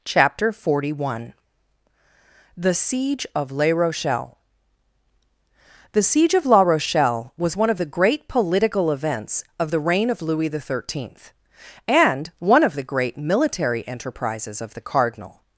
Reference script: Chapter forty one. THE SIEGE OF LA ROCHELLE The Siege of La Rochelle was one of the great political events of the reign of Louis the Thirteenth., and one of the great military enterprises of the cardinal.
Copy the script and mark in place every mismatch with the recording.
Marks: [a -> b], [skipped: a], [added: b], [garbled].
Chapter forty one. THE SIEGE OF LA ROCHELLE The Siege of La Rochelle was one of the great political events of the reign of Louis the Thirteenth., and one of the great military enterprises of the cardinal.